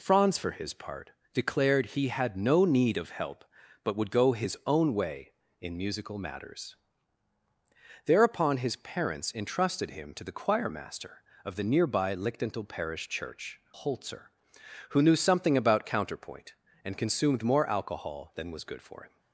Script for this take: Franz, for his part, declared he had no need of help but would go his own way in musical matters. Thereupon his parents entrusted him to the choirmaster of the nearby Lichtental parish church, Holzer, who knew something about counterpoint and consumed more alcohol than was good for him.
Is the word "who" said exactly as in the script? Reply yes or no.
yes